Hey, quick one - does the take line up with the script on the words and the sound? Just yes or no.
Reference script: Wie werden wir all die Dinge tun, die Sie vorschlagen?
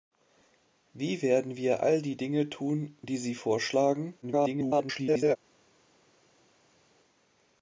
no